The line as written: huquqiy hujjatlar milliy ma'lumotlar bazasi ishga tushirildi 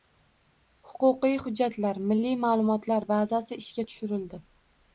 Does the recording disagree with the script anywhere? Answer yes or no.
no